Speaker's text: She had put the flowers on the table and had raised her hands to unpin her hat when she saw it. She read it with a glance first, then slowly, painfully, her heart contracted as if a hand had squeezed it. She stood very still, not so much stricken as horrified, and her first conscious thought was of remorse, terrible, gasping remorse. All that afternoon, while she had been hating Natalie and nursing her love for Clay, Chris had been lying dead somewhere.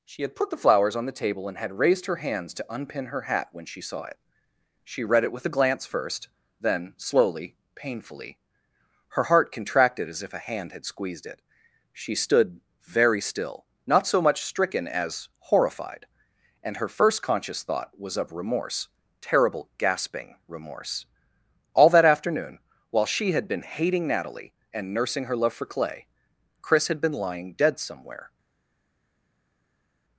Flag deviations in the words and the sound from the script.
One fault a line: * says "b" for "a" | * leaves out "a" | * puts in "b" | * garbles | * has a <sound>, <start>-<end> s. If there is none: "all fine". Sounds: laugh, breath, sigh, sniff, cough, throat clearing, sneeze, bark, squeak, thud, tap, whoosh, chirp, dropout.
all fine